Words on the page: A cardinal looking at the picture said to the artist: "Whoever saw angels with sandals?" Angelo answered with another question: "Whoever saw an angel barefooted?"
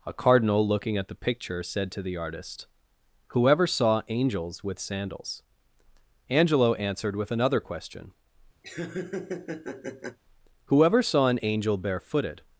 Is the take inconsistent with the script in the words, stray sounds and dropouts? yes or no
yes